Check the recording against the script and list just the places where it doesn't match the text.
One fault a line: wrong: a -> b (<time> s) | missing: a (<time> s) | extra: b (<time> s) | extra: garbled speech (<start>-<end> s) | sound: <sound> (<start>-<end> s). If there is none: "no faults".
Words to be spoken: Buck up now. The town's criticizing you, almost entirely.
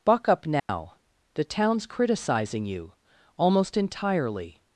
sound: dropout (0.6-0.7 s)